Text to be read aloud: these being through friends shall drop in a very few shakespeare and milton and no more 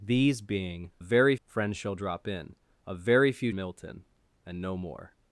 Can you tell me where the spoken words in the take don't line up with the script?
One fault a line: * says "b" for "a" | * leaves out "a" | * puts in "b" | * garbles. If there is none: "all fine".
* says "very" for "through"
* leaves out "shakespeare and"